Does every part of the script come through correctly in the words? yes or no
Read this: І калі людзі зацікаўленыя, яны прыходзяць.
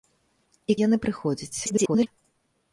no